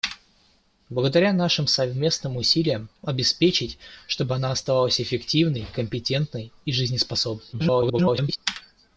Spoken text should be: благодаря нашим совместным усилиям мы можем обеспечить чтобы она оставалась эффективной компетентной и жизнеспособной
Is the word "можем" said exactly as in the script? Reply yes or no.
no